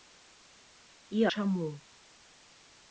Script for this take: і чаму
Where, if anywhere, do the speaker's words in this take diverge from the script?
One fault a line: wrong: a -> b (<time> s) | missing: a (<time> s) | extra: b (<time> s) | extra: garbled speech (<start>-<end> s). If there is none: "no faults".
no faults